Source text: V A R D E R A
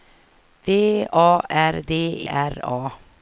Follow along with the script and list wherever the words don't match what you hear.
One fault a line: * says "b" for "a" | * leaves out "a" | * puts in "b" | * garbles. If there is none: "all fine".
* leaves out "E"